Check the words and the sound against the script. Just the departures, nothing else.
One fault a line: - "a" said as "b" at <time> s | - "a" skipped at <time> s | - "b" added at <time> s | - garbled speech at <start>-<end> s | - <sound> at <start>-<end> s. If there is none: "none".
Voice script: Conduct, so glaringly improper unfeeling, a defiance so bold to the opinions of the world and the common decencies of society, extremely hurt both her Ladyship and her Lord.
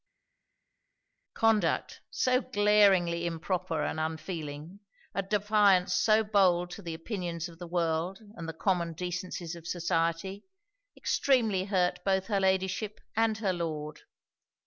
- "and" added at 3.8 s